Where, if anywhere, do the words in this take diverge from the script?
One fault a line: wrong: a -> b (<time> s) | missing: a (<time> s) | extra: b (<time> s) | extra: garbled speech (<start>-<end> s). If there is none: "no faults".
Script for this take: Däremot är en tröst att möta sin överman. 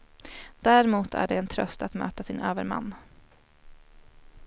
extra: det (1.3 s)